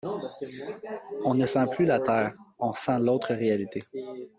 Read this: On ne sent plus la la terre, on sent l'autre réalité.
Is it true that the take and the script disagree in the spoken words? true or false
true